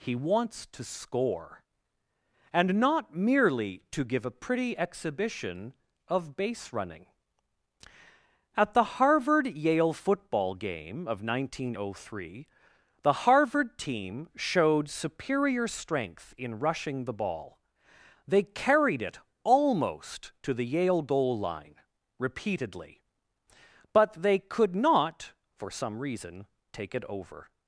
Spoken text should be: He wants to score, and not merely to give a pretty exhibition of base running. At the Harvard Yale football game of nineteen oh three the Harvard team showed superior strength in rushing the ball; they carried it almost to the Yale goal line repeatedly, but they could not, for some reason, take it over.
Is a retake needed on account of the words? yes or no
no